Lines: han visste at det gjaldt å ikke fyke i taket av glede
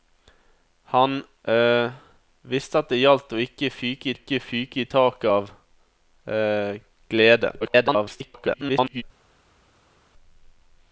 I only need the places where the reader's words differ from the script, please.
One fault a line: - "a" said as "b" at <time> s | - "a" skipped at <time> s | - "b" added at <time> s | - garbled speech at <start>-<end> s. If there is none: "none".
- "ikke fyke" added at 4.1 s
- garbled speech at 7.6-9.0 s